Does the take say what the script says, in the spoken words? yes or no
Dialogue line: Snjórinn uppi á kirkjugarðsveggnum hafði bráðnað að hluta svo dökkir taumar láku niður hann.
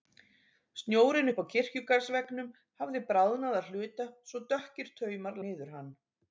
no